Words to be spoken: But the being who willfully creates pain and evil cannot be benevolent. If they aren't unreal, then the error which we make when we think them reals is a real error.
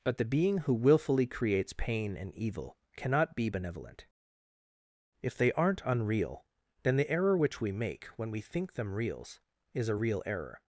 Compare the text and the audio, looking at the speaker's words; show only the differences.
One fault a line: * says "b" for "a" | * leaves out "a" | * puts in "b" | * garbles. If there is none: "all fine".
all fine